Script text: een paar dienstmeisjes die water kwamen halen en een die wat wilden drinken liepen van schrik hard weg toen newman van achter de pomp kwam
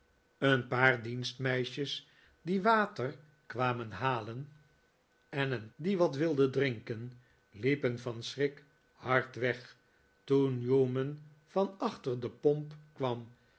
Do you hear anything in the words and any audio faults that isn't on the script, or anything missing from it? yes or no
no